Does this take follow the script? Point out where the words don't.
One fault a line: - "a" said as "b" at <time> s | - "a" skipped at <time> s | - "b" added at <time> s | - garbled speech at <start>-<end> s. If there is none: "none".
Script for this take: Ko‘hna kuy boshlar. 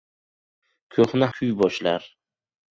none